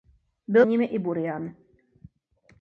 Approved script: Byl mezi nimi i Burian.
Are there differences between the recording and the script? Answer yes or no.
yes